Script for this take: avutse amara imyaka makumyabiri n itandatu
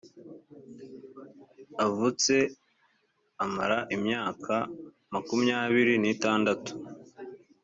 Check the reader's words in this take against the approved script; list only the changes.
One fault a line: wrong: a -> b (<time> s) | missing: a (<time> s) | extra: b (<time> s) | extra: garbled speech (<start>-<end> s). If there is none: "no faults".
no faults